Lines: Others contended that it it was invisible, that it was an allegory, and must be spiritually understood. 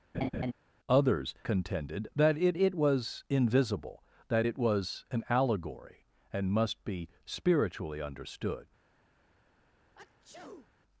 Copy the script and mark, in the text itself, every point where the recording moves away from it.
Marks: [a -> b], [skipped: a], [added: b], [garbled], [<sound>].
[laugh] Others contended that it it was invisible, that it was an allegory, and must be spiritually understood. [sneeze]